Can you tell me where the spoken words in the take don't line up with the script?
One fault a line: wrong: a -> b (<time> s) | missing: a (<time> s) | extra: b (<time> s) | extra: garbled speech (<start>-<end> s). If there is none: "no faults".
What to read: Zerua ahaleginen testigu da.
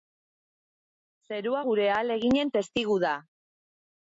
extra: gure (1.6 s)